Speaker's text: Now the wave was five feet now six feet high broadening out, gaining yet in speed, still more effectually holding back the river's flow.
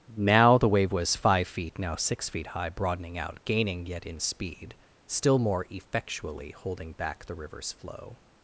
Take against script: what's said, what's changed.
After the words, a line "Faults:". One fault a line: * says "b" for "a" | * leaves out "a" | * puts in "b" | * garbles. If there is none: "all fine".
Now the wave was five feet now six feet high broadening out, gaining yet in speed, still more effectually holding back the river's flow.
Faults:
all fine